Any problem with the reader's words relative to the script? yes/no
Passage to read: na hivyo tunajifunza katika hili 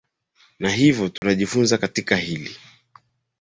no